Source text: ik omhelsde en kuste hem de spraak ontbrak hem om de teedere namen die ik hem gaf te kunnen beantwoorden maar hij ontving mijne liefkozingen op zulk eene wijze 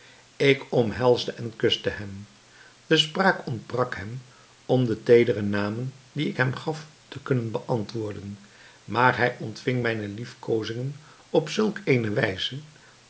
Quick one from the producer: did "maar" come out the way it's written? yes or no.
yes